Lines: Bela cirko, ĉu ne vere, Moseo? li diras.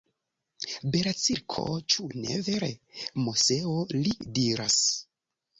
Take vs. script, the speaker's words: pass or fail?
pass